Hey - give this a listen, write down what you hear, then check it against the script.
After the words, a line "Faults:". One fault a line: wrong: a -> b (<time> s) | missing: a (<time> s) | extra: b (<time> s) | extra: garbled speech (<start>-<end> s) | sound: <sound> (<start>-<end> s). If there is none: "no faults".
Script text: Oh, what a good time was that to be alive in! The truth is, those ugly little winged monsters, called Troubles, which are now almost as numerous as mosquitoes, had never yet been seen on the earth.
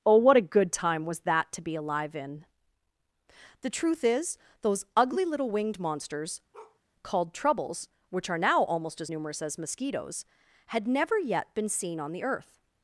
Oh, what a good time was that to be alive in! The truth is, those ugly little winged monsters, called Troubles, which are now almost as numerous as mosquitoes, had never yet been seen on the earth.
Faults:
sound: bark (6.5-6.8 s)